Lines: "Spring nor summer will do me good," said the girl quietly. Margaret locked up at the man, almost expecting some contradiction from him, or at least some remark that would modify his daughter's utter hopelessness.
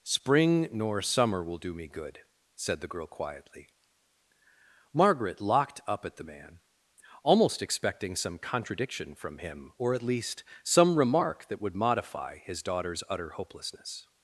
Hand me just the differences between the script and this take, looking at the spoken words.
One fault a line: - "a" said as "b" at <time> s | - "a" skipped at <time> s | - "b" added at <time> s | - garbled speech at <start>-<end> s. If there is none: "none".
none